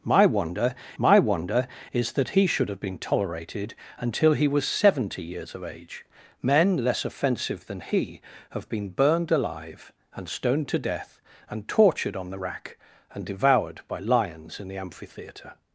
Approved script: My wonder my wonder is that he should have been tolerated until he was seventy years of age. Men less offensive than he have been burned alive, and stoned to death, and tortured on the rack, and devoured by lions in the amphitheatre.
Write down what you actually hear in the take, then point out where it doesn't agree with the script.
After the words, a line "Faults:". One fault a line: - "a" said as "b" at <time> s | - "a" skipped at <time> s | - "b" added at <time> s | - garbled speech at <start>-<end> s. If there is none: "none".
My wonder my wonder is that he should have been tolerated until he was seventy years of age. Men less offensive than he have been burned alive, and stoned to death, and tortured on the rack, and devoured by lions in the amphitheatre.
Faults:
none